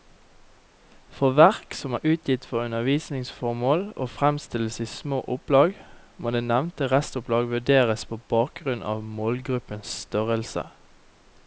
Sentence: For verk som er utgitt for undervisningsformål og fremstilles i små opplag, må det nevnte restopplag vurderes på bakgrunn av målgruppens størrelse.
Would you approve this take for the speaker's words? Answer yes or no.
yes